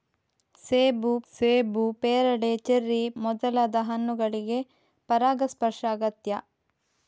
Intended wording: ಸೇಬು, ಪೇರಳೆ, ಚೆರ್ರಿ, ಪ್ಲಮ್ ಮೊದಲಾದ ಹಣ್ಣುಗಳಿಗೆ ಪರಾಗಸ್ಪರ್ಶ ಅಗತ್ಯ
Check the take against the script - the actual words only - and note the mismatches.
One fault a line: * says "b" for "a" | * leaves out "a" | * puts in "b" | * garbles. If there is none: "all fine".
* puts in "ಸೇಬು"
* leaves out "ಪ್ಲಮ್"